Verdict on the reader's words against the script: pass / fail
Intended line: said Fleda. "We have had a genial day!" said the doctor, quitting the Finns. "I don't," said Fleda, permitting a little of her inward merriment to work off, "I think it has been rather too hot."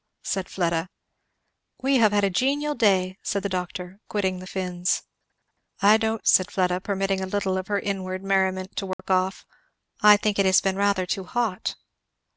pass